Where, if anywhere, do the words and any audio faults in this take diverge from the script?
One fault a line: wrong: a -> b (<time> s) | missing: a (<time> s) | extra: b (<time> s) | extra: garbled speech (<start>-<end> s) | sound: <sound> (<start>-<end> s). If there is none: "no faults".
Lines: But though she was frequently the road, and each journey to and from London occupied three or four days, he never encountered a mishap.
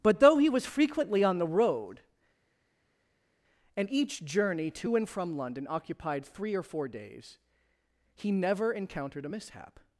wrong: she -> he (0.4 s)
extra: on (1.2 s)